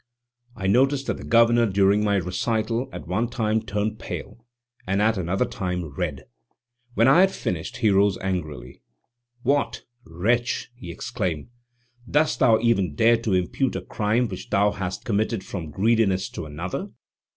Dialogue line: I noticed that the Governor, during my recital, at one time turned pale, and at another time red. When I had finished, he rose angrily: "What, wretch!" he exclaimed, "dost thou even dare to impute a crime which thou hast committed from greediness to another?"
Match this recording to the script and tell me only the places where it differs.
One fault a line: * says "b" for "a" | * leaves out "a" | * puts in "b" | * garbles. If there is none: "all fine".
all fine